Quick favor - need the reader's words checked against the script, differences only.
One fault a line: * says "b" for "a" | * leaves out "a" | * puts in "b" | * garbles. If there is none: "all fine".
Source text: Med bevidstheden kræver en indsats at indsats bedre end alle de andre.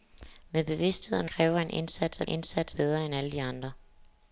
all fine